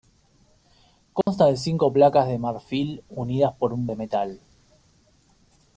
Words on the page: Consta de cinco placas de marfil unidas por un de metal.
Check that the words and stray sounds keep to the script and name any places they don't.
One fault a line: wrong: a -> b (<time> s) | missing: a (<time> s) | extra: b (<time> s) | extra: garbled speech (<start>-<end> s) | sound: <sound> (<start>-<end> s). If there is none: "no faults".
sound: dropout (1.2-1.3 s)